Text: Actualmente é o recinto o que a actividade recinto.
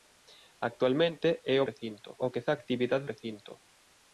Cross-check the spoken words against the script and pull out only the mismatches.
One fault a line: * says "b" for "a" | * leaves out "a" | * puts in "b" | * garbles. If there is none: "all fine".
all fine